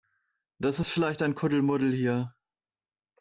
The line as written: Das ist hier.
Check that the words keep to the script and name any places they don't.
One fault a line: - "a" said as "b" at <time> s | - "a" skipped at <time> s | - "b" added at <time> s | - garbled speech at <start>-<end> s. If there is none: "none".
- "vielleicht ein Kuddelmuddel" added at 0.9 s